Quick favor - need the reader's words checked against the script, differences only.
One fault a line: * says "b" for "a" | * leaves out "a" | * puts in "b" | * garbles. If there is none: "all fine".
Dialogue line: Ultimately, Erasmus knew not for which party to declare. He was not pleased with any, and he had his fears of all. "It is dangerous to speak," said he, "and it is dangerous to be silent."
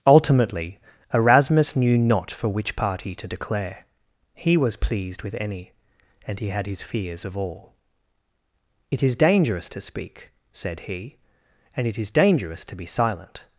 * leaves out "not"